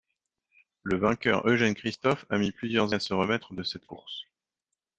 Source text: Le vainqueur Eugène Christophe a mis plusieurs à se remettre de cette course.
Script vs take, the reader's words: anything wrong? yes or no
no